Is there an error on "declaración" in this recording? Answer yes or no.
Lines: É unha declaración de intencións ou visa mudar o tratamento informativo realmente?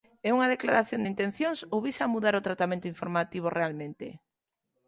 no